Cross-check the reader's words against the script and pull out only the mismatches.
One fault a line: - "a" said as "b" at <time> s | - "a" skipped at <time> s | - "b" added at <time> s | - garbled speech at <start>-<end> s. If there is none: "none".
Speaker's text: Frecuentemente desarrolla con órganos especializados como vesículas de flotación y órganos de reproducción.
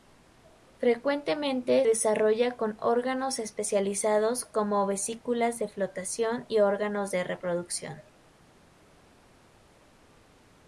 none